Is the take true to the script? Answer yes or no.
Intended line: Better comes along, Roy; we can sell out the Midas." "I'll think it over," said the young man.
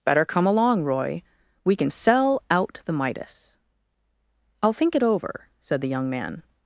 no